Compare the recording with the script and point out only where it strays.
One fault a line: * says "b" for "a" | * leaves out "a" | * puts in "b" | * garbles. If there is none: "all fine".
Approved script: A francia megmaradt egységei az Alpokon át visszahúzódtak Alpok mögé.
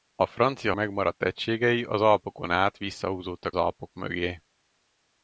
all fine